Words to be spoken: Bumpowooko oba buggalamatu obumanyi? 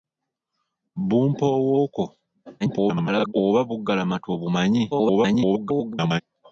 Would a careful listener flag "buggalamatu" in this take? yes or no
no